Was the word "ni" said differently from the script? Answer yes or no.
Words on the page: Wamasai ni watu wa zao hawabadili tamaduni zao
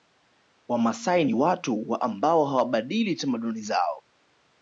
no